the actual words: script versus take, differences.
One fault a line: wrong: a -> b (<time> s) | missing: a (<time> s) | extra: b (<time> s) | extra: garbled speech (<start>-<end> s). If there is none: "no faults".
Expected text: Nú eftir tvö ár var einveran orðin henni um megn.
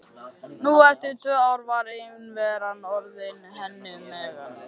no faults